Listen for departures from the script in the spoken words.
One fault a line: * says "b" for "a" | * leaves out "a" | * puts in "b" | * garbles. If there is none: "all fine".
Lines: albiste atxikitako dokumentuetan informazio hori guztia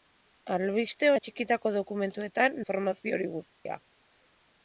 all fine